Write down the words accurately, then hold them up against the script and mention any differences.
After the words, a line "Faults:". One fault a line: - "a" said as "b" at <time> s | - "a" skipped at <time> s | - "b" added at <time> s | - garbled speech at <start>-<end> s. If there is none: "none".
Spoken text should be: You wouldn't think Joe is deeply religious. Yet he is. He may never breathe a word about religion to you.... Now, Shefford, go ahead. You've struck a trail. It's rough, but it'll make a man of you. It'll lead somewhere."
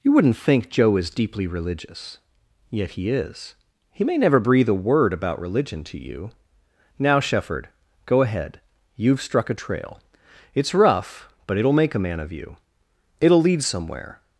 You wouldn't think Joe is deeply religious. Yet he is. He may never breathe a word about religion to you.... Now, Shefford, go ahead. You've struck a trail. It's rough, but it'll make a man of you. It'll lead somewhere."
Faults:
none